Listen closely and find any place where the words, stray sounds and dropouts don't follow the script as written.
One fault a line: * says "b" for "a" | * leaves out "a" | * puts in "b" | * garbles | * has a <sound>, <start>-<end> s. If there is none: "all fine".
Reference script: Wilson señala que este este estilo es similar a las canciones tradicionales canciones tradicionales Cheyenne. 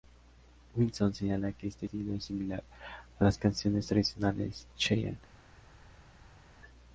* leaves out "este"
* leaves out "canciones tradicionales"